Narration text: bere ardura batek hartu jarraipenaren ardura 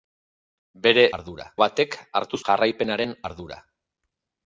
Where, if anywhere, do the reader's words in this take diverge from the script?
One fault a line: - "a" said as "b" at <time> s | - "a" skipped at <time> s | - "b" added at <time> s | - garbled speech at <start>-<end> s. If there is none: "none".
none